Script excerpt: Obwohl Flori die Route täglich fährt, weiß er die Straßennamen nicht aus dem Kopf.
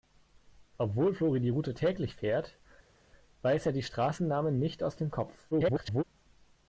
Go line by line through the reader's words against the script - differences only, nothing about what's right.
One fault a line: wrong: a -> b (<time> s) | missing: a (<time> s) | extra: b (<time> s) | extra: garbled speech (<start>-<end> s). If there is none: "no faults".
extra: garbled speech (5.5-6.0 s)